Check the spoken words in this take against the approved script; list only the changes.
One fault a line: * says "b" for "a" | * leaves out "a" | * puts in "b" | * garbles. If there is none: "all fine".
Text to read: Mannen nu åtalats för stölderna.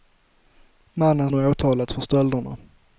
all fine